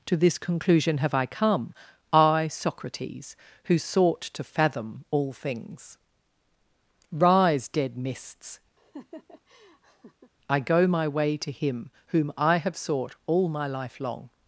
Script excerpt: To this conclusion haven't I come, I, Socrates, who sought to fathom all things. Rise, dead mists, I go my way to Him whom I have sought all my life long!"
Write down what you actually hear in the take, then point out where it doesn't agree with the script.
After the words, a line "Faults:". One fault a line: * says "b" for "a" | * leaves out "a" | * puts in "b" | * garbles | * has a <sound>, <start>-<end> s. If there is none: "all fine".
To this conclusion have I come, I, Socrates, who sought to fathom all things. Rise, dead mists, I go my way to Him whom I have sought all my life long!"
Faults:
* says "have" for "haven't"
* has a laugh, 8.8-10.3 s